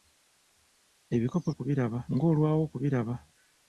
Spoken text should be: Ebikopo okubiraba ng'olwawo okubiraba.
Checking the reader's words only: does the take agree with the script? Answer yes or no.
yes